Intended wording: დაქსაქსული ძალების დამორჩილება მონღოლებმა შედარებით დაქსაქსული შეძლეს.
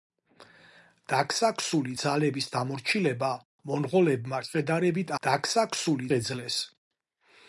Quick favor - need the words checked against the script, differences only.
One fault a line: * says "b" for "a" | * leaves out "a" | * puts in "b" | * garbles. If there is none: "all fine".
all fine